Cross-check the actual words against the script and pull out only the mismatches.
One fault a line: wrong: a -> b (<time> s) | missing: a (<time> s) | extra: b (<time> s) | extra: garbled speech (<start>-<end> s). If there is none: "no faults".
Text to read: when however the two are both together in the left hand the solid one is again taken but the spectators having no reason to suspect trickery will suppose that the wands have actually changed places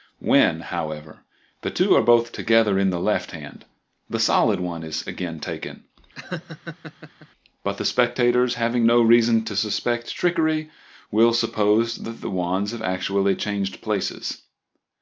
no faults